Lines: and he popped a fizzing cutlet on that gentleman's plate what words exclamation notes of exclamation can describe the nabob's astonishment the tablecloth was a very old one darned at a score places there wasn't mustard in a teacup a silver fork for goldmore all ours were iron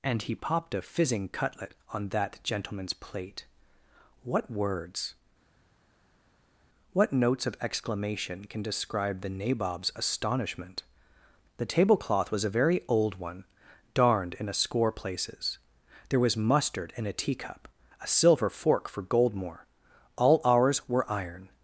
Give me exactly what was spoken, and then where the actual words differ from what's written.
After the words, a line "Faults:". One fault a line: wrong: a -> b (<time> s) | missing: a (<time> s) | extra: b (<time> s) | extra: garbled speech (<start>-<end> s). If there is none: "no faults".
and he popped a fizzing cutlet on that gentleman's plate what words what notes of exclamation can describe the nabob's astonishment the tablecloth was a very old one darned in a score places there was mustard in a teacup a silver fork for goldmore all ours were iron
Faults:
wrong: exclamation -> what (6.9 s)
wrong: at -> in (14.3 s)
wrong: wasn't -> was (16.2 s)